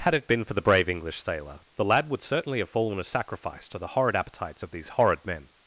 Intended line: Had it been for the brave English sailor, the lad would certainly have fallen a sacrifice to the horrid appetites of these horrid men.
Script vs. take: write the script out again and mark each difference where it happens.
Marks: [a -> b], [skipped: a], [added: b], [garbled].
Had it been for the brave English sailor, the lad would certainly have fallen a sacrifice to the horrid appetites of these horrid men.